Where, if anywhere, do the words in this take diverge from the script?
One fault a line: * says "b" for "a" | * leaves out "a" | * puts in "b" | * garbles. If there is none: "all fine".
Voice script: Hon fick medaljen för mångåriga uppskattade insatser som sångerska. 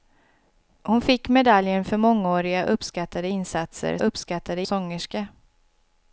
* says "uppskattade" for "som"